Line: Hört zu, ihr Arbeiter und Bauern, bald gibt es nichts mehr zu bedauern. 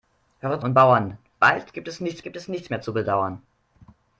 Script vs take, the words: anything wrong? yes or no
yes